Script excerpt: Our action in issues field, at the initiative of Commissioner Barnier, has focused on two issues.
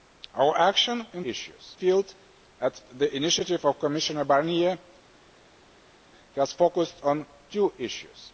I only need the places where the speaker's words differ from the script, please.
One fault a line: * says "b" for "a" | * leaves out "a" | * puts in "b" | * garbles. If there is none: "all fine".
all fine